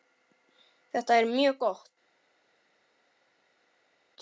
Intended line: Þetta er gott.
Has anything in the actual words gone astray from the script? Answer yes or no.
yes